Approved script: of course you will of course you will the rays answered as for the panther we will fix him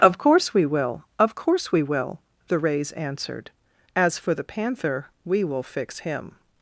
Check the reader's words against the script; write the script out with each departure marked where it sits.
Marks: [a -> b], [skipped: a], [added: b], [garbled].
of course [you -> we] will of course [you -> we] will the rays answered as for the panther we will fix him